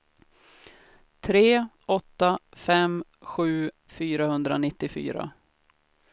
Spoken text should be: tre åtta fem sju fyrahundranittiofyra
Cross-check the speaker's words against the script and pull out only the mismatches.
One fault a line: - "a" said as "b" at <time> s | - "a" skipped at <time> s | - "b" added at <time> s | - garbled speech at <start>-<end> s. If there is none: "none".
none